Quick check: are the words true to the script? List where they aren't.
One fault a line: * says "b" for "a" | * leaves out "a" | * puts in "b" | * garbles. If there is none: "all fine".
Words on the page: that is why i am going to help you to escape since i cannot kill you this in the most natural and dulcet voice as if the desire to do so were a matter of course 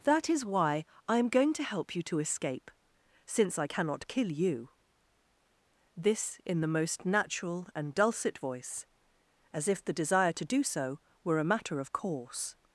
all fine